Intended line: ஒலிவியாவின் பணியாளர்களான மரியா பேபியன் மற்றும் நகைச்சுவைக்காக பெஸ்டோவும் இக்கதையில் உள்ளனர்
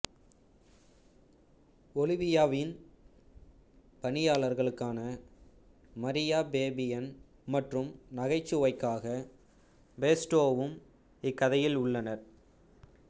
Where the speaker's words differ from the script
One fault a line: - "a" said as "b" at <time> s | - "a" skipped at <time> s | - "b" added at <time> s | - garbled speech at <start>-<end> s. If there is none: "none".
none